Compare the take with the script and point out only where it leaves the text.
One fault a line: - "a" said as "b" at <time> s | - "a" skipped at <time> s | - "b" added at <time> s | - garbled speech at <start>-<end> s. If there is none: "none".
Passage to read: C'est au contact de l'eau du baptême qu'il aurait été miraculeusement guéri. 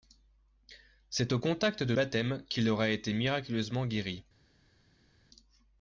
- "l'eau du" skipped at 1.9 s